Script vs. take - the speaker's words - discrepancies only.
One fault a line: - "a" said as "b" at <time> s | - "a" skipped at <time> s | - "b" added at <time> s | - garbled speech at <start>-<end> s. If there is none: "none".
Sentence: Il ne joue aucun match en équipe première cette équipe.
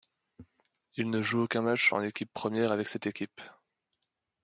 - "avec" added at 2.7 s